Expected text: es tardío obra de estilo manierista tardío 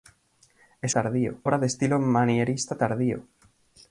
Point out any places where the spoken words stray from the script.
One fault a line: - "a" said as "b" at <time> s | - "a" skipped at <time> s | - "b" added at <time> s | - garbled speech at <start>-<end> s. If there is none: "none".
none